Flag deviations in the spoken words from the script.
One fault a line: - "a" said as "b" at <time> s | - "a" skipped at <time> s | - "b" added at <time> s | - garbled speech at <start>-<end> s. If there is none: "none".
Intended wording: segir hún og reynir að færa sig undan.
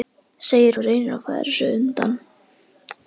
- "hún" skipped at 0.8 s